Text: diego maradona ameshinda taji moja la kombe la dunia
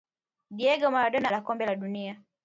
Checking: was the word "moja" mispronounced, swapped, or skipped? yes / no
yes